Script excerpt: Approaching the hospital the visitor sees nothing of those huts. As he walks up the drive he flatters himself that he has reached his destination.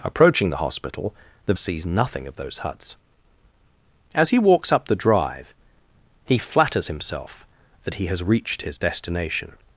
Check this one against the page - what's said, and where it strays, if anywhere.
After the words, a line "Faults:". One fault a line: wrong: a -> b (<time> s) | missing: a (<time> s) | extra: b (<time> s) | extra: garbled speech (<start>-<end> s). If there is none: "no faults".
Approaching the hospital the sees nothing of those huts. As he walks up the drive he flatters himself that he has reached his destination.
Faults:
missing: visitor (1.5 s)